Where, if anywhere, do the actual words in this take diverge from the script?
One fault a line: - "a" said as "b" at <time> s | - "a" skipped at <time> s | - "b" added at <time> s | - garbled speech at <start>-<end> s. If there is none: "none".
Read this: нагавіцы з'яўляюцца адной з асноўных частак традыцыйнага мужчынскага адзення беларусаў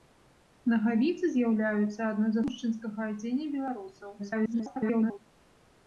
- "асноўных частак традыцыйнага" skipped at 2.4 s
- garbled speech at 4.2-5.2 s